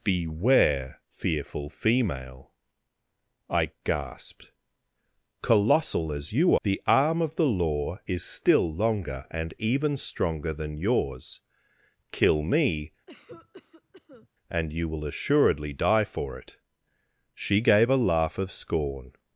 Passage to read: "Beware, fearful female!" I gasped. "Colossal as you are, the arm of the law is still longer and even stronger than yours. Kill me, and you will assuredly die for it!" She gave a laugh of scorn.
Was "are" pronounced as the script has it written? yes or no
no